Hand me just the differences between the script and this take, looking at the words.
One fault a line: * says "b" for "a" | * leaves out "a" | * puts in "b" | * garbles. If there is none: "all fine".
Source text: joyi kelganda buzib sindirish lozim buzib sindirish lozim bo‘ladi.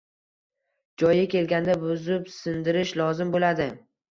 * leaves out "buzib sindirish lozim"